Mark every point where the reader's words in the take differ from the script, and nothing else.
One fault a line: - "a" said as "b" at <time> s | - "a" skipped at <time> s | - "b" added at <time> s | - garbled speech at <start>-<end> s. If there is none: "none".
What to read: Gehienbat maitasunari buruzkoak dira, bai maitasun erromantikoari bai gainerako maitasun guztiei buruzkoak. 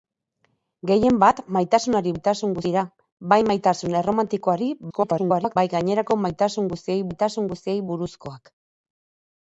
- "buruzkoak" said as "maitasun" at 2.2 s
- garbled speech at 4.9-5.6 s
- "maitasun guztiei" added at 7.1 s